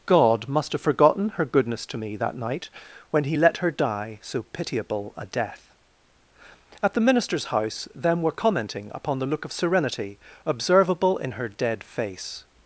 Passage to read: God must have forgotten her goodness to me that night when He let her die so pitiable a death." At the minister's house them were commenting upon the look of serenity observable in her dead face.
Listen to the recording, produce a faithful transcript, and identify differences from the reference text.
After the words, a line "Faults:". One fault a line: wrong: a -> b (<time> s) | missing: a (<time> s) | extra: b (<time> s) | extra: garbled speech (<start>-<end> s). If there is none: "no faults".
God must have forgotten her goodness to me that night when He let her die so pitiable a death." At the minister's house them were commenting upon the look of serenity observable in her dead face.
Faults:
no faults